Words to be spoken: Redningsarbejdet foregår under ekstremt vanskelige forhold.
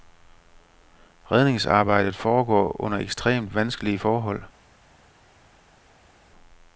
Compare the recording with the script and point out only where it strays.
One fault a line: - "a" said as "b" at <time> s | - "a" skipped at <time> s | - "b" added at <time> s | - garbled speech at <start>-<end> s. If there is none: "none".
none